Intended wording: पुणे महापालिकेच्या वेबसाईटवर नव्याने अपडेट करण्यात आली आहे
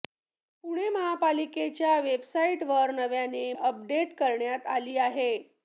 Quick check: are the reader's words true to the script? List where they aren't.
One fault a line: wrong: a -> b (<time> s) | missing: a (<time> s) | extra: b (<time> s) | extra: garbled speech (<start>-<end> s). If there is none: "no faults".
no faults